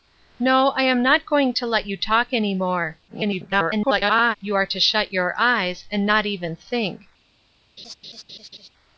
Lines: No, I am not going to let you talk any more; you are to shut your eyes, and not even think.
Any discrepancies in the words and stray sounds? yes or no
yes